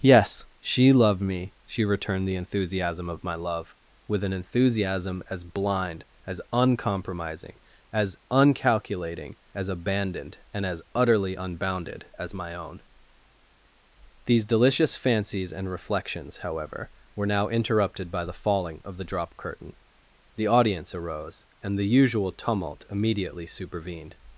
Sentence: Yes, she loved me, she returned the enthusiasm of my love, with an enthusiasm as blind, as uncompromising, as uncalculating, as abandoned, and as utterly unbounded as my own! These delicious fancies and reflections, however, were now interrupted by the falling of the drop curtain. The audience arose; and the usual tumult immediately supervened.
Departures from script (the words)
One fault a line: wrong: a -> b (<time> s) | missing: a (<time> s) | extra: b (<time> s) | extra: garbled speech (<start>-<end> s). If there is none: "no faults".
no faults